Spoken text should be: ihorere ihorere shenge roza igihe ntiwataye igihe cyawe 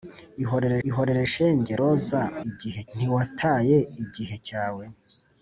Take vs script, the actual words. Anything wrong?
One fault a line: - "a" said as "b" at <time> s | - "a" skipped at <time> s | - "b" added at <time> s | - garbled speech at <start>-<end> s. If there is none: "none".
none